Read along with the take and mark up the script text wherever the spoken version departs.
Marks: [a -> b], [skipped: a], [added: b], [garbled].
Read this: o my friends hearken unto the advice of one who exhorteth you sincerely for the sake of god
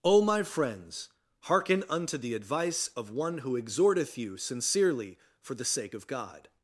o my friends hearken unto the advice of one who exhorteth you sincerely for the sake of god